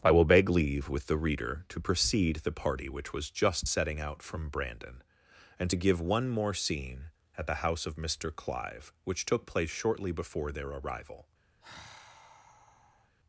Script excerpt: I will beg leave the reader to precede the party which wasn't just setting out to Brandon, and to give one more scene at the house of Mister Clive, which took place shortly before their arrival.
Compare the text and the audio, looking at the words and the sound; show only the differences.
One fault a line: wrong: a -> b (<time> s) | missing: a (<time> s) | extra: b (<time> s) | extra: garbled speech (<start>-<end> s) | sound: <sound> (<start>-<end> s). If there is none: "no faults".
extra: with (0.9 s)
wrong: wasn't -> was (3.1 s)
wrong: to -> from (4.2 s)
sound: sigh (11.6-13.2 s)